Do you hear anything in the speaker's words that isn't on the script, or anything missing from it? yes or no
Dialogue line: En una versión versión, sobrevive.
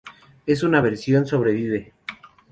yes